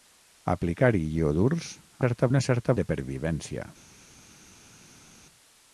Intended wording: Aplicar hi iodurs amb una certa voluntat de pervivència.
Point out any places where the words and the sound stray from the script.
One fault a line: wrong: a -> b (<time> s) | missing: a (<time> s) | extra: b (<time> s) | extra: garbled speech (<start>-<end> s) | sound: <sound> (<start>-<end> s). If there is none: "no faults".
wrong: amb -> certa (2.0 s)
missing: voluntat (2.8 s)